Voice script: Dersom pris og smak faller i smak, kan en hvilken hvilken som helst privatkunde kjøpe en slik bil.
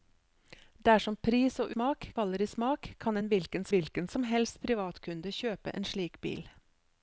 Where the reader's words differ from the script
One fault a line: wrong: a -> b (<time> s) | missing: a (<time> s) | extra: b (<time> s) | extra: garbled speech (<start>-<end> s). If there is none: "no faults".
no faults